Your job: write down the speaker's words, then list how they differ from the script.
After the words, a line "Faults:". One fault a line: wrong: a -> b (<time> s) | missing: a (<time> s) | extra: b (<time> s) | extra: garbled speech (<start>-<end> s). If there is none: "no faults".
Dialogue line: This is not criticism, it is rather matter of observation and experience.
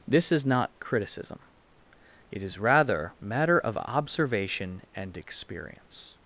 This is not criticism, it is rather matter of observation and experience.
Faults:
no faults